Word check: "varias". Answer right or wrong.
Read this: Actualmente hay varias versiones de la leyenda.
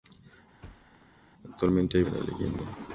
wrong